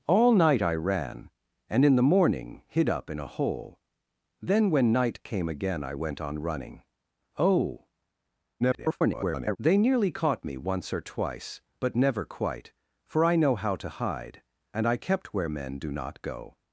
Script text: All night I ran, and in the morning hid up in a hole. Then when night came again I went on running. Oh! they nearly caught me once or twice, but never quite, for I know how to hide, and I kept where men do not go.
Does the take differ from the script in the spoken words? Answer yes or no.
yes